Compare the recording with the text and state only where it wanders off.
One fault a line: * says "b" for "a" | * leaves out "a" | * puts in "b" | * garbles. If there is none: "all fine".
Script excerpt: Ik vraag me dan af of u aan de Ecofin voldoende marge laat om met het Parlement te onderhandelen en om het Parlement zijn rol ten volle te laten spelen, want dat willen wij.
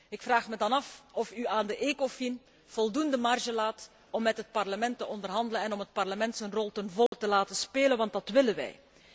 all fine